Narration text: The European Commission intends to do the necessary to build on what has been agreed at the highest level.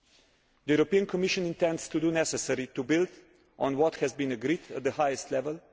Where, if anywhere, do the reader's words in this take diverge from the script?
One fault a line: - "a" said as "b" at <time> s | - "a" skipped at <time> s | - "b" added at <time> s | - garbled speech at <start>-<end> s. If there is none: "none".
none